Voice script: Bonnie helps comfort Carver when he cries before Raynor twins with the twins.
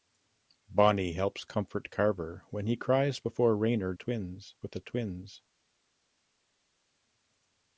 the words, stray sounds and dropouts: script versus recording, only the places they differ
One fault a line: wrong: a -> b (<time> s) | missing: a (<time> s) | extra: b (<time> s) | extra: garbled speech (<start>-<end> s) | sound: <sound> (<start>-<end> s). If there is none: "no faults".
no faults